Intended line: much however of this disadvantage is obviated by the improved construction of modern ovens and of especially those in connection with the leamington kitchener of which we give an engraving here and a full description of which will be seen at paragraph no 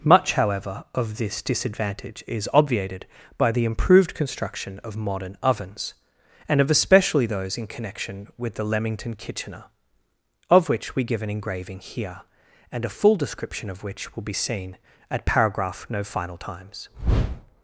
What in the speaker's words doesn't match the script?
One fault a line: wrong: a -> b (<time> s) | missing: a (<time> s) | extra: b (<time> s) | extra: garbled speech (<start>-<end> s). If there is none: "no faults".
extra: final times (16.0 s)